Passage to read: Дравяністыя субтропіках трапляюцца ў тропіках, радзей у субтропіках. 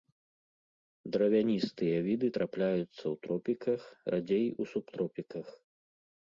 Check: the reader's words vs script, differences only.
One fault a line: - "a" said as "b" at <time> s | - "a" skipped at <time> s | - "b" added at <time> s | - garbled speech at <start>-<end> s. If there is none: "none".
- "субтропіках" said as "віды" at 2.1 s